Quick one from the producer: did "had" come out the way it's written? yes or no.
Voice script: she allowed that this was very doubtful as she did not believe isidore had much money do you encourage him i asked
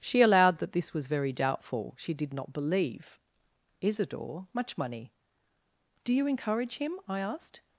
no